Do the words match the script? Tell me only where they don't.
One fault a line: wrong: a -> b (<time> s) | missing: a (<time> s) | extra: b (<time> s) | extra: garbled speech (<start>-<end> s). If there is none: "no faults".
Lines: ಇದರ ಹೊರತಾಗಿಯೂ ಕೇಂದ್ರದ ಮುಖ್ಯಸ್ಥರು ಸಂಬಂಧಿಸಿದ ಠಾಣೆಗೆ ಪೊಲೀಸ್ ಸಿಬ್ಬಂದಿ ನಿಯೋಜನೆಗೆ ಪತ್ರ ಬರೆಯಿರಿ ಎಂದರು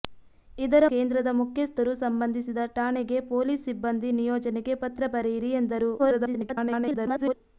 missing: ಹೊರತಾಗಿಯೂ (0.8 s)
extra: garbled speech (6.0-7.3 s)